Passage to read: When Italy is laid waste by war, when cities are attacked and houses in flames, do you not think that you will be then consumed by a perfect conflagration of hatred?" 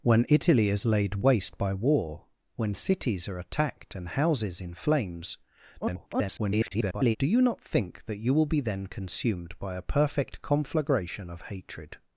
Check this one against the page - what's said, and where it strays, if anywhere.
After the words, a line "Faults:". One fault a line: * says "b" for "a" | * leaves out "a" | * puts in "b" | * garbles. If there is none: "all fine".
When Italy is laid waste by war, when cities are attacked and houses in flames, [garbled] do you not think that you will be then consumed by a perfect conflagration of hatred?"
Faults:
* garbles